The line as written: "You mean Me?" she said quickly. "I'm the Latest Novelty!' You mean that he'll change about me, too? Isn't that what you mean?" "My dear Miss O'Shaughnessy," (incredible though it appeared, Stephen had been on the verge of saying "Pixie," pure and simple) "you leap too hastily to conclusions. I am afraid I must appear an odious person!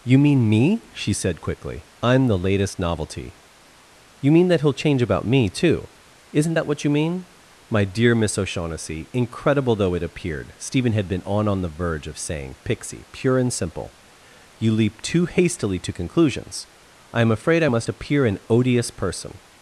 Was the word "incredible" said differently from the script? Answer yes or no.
no